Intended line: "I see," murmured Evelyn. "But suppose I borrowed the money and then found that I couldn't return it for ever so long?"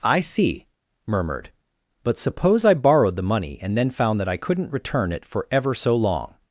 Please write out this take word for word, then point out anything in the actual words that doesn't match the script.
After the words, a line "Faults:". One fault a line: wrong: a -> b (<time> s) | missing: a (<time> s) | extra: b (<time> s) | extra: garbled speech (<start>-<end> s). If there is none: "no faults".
"I see," murmured. "But suppose I borrowed the money and then found that I couldn't return it for ever so long?"
Faults:
missing: Evelyn (1.5 s)